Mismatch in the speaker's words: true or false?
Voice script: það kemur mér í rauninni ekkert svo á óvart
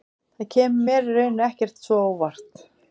false